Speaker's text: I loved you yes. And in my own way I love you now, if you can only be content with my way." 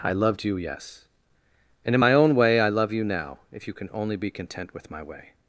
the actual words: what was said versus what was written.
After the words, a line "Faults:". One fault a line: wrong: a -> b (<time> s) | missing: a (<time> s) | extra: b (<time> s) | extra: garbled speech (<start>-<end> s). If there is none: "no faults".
I loved you yes. And in my own way I love you now, if you can only be content with my way."
Faults:
no faults